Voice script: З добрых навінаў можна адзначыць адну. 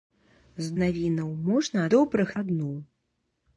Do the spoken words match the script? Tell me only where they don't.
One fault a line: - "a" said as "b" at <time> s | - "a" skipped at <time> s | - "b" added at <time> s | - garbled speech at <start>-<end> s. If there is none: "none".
- "добрых" skipped at 0.7 s
- "адзначыць" said as "добрых" at 1.9 s